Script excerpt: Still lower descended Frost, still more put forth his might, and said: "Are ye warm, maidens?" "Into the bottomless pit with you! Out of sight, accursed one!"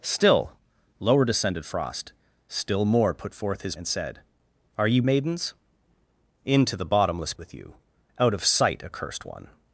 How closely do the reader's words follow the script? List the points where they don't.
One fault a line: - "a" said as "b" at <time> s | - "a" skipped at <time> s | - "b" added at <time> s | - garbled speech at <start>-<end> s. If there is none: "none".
- "might" skipped at 3.8 s
- "warm" skipped at 5.0 s
- "pit" skipped at 7.3 s